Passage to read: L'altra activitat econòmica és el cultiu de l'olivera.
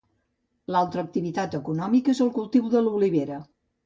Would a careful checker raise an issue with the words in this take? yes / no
no